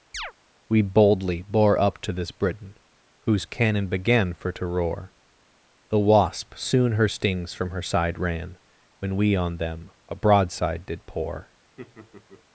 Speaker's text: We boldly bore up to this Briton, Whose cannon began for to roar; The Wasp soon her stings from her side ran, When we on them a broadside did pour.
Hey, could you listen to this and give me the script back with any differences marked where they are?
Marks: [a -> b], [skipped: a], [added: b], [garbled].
We boldly bore up to this Briton, Whose cannon began for to roar; The Wasp soon her stings from her side ran, When we on them a broadside did pour.